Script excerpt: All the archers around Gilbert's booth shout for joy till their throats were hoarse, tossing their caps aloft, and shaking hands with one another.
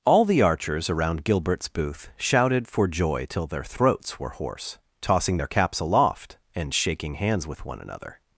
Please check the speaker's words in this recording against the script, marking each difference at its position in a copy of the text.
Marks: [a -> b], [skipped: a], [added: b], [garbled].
All the archers around Gilbert's booth [shout -> shouted] for joy till their throats were hoarse, tossing their caps aloft, and shaking hands with one another.